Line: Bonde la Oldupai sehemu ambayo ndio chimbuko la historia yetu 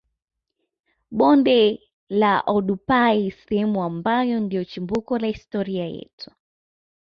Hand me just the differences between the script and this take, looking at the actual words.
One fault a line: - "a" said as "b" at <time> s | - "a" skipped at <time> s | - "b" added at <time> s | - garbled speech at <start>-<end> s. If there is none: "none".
none